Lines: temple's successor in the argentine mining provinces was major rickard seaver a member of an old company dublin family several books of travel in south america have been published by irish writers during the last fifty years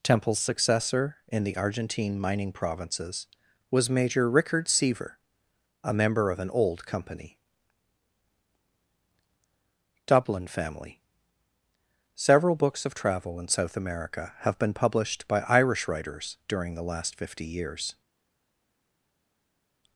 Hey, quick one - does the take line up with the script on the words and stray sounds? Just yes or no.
yes